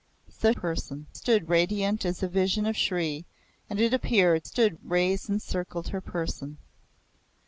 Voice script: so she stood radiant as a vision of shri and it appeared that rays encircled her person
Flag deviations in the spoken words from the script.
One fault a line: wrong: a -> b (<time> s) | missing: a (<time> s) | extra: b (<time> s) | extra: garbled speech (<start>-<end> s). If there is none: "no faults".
wrong: she -> person (0.5 s)
wrong: that -> stood (4.4 s)